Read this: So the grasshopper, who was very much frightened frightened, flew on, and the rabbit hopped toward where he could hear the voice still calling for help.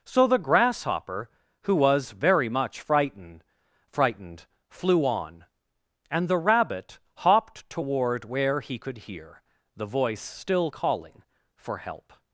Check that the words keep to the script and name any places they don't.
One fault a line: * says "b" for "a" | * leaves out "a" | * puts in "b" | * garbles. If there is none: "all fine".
all fine